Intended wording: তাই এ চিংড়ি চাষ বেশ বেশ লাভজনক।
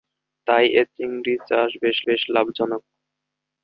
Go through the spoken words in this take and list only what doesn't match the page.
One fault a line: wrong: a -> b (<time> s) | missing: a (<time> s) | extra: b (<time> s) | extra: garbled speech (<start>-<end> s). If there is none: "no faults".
no faults